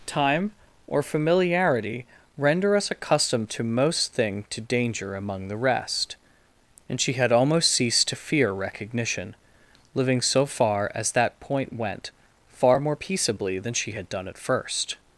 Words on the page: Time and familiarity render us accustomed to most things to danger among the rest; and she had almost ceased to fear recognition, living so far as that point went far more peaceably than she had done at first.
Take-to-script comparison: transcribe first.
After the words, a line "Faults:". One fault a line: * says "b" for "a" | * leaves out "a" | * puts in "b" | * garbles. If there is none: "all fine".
Time or familiarity render us accustomed to most thing to danger among the rest; and she had almost ceased to fear recognition, living so far as that point went far more peaceably than she had done at first.
Faults:
* says "or" for "and"
* says "thing" for "things"